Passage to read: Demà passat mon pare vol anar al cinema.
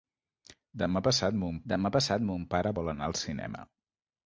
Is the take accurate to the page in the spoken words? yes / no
no